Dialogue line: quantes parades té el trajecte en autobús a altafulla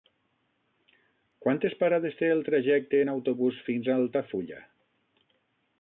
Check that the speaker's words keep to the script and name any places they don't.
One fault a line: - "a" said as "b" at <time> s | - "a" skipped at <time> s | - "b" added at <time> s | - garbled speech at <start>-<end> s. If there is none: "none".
- "fins" added at 3.7 s